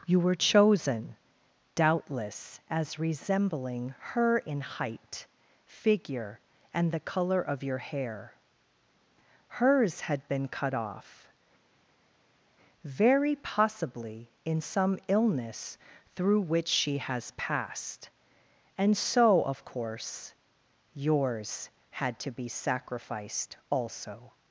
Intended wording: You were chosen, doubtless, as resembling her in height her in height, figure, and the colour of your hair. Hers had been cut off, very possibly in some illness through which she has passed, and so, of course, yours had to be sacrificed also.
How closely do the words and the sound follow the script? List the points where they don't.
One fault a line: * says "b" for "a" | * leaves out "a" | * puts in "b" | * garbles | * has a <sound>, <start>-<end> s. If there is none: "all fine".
* leaves out "her in height"